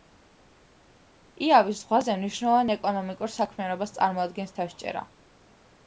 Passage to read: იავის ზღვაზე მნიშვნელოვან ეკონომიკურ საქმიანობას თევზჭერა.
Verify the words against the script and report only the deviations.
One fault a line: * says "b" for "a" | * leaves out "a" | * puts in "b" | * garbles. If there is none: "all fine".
* puts in "წარმოადგენს"